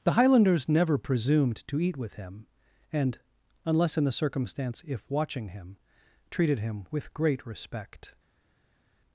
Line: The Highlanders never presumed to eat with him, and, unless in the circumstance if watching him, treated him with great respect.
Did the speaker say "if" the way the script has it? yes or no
yes